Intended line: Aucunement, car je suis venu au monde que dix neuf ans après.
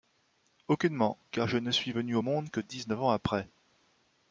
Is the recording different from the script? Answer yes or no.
yes